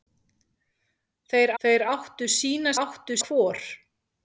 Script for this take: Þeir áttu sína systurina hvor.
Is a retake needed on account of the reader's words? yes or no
yes